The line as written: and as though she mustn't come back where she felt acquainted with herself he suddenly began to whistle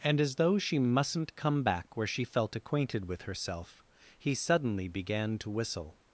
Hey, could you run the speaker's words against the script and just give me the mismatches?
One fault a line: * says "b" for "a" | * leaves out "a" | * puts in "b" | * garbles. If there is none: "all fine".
all fine